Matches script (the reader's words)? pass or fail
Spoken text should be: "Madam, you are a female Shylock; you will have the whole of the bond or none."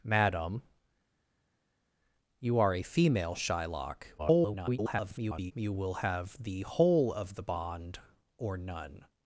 fail